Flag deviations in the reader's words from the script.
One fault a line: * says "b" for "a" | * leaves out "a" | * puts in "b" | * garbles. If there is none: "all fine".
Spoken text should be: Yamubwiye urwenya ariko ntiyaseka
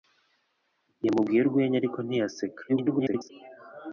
* garbles